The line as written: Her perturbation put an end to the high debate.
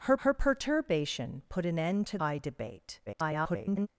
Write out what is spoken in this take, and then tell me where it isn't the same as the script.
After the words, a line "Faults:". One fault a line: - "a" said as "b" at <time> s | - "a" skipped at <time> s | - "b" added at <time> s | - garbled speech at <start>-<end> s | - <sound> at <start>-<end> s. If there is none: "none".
Her her perturbation put an end to high debate. [garbled]
Faults:
- "her" added at 0.2 s
- "the" skipped at 2.2 s
- garbled speech at 3.1-3.9 s